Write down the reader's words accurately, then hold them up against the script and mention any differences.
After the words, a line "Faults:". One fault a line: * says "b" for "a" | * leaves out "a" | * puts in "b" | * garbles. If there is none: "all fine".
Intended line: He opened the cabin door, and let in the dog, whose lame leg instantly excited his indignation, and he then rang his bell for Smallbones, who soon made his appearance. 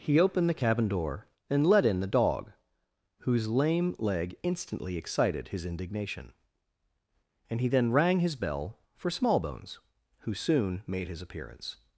He opened the cabin door, and let in the dog, whose lame leg instantly excited his indignation, and he then rang his bell for Smallbones, who soon made his appearance.
Faults:
all fine